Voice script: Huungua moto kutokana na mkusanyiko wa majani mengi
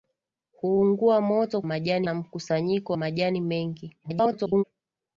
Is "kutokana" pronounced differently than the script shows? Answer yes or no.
yes